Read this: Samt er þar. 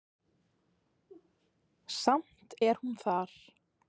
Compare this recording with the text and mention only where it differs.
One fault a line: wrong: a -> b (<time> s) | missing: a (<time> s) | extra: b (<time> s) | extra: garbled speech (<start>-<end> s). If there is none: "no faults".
extra: hún (2.8 s)